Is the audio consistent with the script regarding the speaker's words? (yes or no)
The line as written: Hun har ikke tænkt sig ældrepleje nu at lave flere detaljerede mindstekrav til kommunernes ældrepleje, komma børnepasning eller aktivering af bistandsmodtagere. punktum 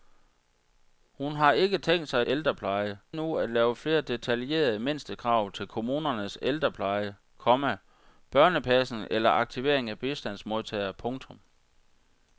yes